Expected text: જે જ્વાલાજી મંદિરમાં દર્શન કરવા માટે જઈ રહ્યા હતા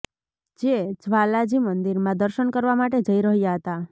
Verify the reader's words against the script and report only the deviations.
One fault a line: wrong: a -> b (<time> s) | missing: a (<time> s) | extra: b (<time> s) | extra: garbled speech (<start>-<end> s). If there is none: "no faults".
no faults